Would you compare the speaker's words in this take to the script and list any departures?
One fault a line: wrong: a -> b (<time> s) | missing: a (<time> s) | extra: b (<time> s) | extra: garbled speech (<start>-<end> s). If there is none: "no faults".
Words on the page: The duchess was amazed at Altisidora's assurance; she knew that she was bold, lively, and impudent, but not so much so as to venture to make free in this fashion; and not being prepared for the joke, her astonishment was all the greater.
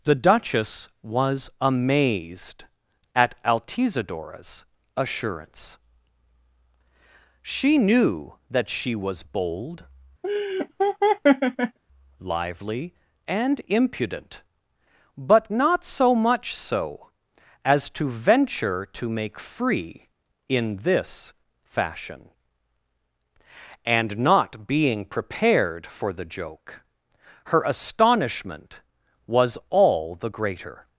no faults